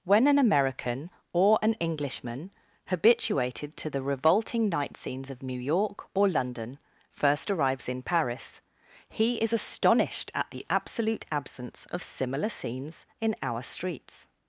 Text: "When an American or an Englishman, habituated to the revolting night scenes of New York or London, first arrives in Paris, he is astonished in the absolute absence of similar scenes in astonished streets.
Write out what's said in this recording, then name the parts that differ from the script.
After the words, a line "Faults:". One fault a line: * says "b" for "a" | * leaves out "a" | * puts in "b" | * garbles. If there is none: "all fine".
"When an American or an Englishman, habituated to the revolting night scenes of New York or London, first arrives in Paris, he is astonished at the absolute absence of similar scenes in our streets.
Faults:
* says "at" for "in"
* says "our" for "astonished"